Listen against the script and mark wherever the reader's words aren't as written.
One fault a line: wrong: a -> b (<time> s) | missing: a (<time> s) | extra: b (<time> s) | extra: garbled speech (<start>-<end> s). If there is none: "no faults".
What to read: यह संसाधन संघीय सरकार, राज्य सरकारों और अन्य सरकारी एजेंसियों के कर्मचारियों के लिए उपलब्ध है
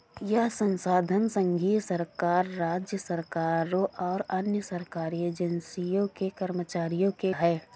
missing: लिए उपलब्ध (7.3 s)